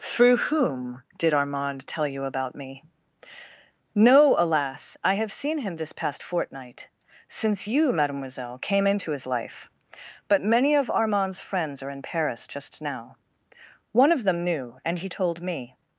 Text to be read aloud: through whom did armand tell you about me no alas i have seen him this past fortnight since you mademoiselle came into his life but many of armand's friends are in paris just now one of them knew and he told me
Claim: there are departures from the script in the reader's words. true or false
false